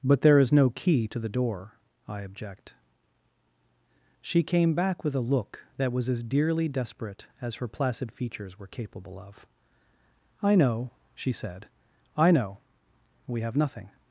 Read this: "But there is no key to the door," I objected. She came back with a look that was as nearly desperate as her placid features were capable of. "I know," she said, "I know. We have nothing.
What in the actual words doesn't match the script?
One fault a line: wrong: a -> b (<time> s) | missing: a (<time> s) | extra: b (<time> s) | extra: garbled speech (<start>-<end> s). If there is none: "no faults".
wrong: objected -> object (2.2 s)
wrong: nearly -> dearly (6.2 s)